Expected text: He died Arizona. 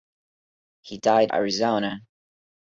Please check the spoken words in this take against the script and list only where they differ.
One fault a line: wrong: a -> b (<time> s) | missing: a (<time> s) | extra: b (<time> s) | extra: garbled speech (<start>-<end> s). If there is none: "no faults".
no faults